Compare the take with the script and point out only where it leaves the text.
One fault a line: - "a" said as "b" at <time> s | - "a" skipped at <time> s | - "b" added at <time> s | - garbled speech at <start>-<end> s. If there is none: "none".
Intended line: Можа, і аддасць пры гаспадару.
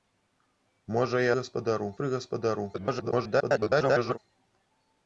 - "аддасць" said as "гаспадару" at 1.4 s
- garbled speech at 2.7-4.2 s